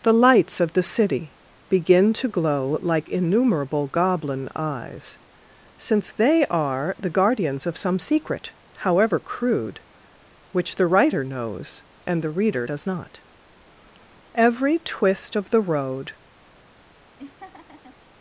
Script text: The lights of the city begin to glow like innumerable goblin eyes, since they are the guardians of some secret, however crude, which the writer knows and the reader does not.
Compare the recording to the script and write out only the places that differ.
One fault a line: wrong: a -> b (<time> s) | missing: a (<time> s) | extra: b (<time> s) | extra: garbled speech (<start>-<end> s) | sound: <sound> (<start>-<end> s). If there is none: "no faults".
extra: Every twist of the road (14.3 s)
sound: laugh (17.2-18.0 s)